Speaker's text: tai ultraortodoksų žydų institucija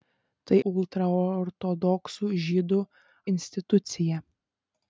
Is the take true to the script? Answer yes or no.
yes